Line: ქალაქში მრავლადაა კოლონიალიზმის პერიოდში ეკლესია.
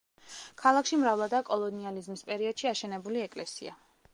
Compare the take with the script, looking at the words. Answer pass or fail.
fail